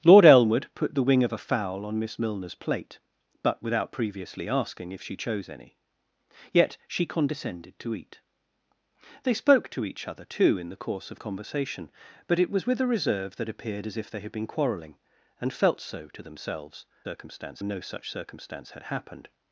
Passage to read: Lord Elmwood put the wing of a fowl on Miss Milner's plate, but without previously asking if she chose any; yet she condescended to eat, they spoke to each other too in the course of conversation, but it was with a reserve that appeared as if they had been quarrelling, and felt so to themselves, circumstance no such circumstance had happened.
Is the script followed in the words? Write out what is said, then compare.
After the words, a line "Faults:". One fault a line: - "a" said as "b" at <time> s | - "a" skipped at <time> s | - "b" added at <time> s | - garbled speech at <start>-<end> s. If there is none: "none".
Lord Elmwood put the wing of a fowl on Miss Milner's plate, but without previously asking if she chose any; yet she condescended to eat, they spoke to each other too in the course of conversation, but it was with a reserve that appeared as if they had been quarrelling, and felt so to themselves, circumstance no such circumstance had happened.
Faults:
none